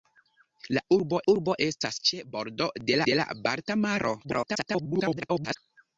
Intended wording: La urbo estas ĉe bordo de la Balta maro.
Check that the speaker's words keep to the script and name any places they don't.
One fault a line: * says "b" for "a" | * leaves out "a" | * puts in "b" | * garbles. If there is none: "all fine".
* puts in "urbo"
* puts in "de"
* garbles